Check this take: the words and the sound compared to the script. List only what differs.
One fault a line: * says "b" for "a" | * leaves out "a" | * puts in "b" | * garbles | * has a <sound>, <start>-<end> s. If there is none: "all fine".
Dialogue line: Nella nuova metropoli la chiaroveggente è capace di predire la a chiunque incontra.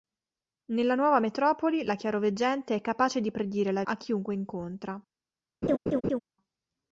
* has a laugh, 5.6-6.2 s